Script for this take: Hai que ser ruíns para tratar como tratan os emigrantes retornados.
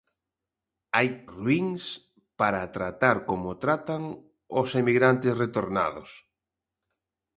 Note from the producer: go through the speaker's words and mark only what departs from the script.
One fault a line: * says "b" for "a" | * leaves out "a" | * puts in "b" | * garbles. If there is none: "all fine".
* leaves out "que ser"